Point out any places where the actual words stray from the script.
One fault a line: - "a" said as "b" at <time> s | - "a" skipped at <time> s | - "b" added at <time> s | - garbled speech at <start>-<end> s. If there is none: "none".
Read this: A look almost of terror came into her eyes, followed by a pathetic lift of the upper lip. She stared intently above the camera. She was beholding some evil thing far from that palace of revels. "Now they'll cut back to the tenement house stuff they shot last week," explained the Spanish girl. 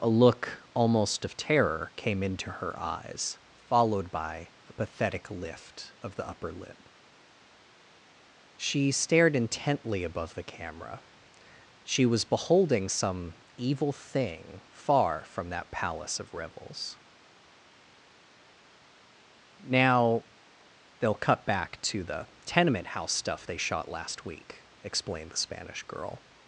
none